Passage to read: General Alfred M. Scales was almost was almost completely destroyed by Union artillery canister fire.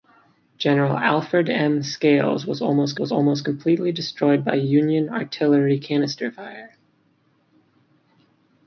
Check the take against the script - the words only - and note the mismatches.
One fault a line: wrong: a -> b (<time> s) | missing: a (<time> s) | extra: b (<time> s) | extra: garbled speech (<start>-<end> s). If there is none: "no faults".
no faults